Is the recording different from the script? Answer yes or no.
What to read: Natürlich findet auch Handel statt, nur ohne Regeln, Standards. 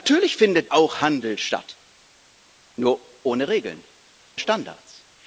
no